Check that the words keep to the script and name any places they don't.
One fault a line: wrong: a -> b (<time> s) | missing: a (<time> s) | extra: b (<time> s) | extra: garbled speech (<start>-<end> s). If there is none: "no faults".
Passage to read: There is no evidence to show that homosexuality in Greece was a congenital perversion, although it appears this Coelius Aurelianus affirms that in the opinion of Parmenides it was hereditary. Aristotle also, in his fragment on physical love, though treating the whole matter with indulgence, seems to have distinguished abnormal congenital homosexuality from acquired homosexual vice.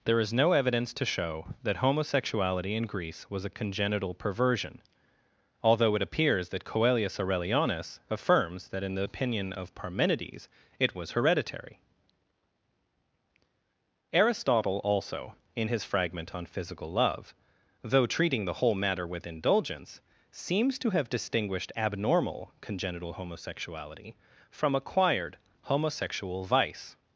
wrong: this -> that (6.5 s)